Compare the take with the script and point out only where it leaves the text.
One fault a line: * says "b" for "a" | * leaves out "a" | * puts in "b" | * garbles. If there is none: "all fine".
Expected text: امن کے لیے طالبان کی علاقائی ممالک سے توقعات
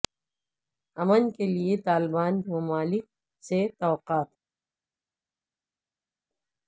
* leaves out "کی علاقائی"